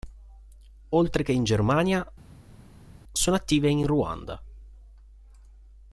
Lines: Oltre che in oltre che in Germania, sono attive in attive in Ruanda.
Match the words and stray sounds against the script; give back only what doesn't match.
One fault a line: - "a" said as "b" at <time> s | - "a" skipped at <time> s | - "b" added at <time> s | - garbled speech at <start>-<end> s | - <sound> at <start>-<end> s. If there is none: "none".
- "oltre che in" skipped at 1.4 s
- "attive in" skipped at 3.9 s